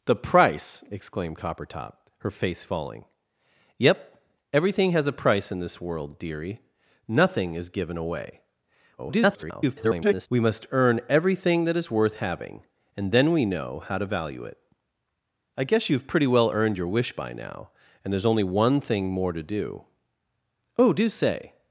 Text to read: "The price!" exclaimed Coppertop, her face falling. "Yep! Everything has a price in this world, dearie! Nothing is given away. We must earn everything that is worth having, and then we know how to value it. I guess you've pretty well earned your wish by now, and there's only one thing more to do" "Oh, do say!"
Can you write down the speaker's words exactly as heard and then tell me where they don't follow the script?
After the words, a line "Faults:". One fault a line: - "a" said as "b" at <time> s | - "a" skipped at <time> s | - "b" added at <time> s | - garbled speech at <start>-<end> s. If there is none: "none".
"The price!" exclaimed Coppertop, her face falling. "Yep! Everything has a price in this world, dearie! Nothing is given away. [garbled] We must earn everything that is worth having, and then we know how to value it. I guess you've pretty well earned your wish by now, and there's only one thing more to do" "Oh, do say!"
Faults:
- garbled speech at 9.0-10.3 s